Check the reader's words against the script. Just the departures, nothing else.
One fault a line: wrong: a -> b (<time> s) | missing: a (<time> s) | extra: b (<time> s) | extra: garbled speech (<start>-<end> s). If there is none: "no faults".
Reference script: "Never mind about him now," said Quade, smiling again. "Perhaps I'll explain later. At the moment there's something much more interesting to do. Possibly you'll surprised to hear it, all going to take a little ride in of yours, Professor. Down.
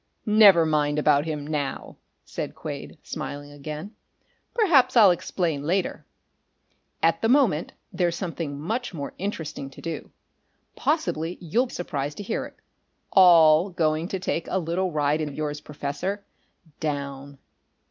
no faults